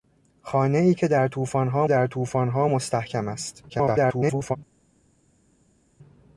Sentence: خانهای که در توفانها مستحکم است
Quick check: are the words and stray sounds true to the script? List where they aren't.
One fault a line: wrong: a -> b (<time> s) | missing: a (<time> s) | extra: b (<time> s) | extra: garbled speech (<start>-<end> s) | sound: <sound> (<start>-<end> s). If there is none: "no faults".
extra: در توفانها (1.9 s)
extra: garbled speech (3.7-4.6 s)